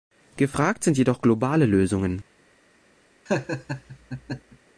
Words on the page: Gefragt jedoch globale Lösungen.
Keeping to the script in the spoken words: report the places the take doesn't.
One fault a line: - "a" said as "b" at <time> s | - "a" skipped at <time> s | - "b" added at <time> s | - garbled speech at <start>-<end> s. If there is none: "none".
- "sind" added at 0.8 s